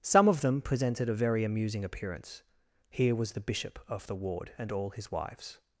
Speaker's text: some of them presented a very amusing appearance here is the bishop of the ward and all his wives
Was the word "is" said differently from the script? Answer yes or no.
yes